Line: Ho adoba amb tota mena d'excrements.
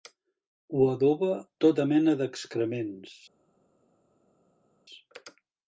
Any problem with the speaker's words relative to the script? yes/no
yes